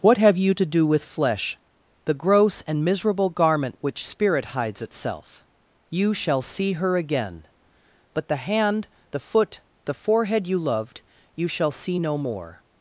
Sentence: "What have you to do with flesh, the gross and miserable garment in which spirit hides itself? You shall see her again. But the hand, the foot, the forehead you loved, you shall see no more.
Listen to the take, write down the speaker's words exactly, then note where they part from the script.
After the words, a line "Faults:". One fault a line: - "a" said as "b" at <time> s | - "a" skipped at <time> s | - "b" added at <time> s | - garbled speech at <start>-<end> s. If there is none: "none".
"What have you to do with flesh, the gross and miserable garment which spirit hides itself? You shall see her again. But the hand, the foot, the forehead you loved, you shall see no more.
Faults:
- "in" skipped at 3.8 s